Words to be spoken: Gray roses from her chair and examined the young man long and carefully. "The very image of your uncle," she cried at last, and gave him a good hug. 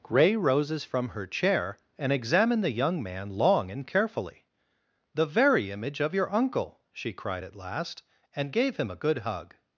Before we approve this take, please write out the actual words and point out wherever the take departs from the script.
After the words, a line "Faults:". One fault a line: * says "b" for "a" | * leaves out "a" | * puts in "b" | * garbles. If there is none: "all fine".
Gray roses from her chair and examined the young man long and carefully. "The very image of your uncle," she cried at last, and gave him a good hug.
Faults:
all fine